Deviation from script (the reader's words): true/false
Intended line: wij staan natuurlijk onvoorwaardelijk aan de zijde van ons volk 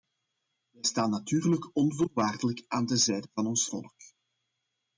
false